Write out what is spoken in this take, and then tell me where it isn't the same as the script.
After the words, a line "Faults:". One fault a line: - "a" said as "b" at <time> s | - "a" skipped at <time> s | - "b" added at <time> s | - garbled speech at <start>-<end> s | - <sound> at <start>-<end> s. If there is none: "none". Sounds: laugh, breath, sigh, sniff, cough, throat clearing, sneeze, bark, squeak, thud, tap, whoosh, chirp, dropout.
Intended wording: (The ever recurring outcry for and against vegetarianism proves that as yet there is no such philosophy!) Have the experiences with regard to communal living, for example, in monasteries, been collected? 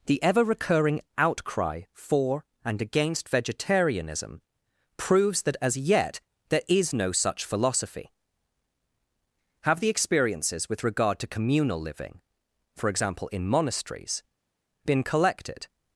(The ever recurring outcry for and against vegetarianism proves that as yet there is no such philosophy!) Have the experiences with regard to communal living, for example, in monasteries, been collected?
Faults:
none